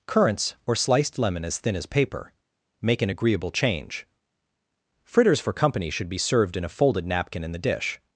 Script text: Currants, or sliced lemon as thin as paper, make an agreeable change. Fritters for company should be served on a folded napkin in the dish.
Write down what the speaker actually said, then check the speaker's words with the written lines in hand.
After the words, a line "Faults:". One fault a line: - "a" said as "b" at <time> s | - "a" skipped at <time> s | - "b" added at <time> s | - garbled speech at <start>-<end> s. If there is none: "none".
Currants, or sliced lemon as thin as paper, make an agreeable change. Fritters for company should be served in a folded napkin in the dish.
Faults:
- "on" said as "in" at 6.6 s